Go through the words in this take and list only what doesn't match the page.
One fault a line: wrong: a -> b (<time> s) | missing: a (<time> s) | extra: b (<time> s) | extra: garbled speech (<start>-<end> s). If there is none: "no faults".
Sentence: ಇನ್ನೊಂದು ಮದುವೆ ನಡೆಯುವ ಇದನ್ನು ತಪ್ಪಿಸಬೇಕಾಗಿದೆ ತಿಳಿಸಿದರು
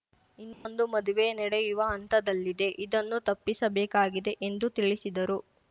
extra: ಹಂತದಲ್ಲಿದೆ (1.9 s)
extra: ಎಂದು (4.4 s)